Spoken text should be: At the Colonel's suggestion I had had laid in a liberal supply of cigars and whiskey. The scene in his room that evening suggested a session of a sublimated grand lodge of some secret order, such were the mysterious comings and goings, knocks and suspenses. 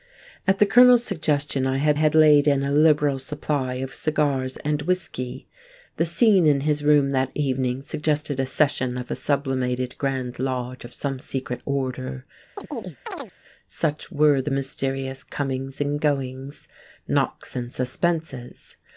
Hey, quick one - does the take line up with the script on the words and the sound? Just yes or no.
no